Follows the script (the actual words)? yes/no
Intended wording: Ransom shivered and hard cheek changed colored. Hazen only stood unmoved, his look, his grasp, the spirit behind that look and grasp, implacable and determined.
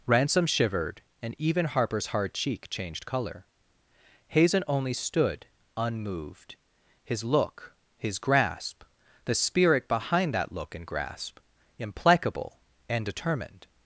no